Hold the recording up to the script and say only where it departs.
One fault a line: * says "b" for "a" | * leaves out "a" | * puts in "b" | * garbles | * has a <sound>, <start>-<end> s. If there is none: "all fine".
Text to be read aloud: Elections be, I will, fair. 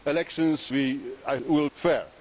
all fine